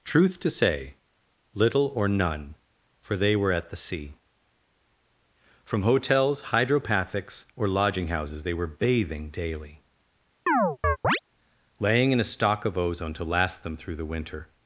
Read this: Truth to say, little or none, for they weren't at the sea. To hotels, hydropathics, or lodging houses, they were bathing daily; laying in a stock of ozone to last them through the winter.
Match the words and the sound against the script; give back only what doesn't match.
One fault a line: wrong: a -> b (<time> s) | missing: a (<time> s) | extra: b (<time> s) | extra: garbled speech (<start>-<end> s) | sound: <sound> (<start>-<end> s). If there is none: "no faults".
wrong: weren't -> were (3.4 s)
wrong: To -> From (5.6 s)
sound: chirp (10.5-11.2 s)